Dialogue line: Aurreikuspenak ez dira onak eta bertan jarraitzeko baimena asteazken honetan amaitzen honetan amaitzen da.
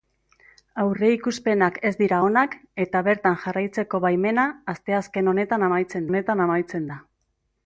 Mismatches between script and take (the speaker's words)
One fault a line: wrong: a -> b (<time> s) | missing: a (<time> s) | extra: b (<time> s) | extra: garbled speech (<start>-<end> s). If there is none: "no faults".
no faults